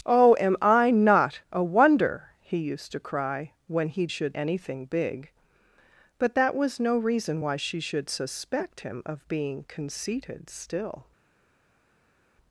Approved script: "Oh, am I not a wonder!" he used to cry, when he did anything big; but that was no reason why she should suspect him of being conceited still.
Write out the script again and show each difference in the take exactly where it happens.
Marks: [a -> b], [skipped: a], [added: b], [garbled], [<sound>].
"Oh, am I not a wonder!" he used to cry, when he [did -> should] anything big; but that was no reason why she should suspect him of being conceited still.